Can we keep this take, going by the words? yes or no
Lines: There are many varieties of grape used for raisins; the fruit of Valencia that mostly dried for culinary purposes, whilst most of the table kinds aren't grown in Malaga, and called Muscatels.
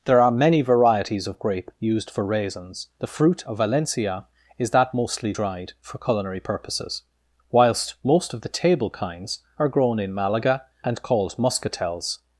no